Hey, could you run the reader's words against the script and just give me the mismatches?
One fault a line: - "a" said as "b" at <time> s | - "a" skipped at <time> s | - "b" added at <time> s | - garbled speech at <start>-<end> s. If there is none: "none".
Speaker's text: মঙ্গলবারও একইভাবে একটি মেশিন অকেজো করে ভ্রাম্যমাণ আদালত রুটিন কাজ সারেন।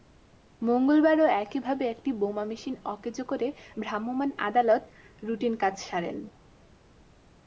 - "বোমা" added at 2.1 s